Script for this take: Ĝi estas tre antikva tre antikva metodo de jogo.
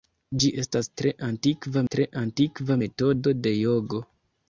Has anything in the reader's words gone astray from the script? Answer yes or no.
no